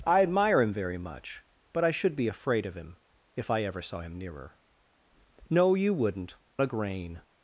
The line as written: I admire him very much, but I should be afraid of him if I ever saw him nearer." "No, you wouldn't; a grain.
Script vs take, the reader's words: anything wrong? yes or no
no